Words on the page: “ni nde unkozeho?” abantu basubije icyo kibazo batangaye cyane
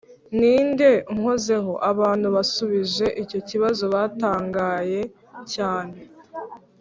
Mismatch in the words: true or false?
false